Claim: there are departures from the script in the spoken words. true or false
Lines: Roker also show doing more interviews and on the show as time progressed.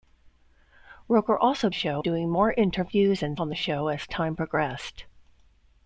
false